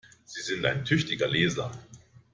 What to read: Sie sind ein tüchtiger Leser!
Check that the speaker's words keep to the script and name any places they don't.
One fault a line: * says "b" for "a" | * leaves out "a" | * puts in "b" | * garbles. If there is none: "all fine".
all fine